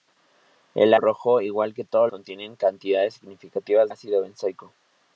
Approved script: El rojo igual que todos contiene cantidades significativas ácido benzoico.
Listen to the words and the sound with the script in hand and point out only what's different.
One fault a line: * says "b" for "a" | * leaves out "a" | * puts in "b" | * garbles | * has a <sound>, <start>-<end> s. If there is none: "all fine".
all fine